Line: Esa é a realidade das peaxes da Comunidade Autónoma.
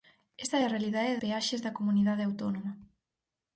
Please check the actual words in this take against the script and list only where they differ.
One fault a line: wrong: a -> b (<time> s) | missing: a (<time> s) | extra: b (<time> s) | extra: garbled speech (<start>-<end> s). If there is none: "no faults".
missing: das (1.2 s)